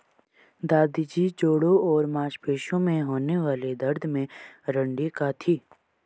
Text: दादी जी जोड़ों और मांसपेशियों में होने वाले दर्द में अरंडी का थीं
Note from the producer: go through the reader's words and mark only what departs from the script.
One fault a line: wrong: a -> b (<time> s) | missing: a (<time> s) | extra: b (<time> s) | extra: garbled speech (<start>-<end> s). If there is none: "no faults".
no faults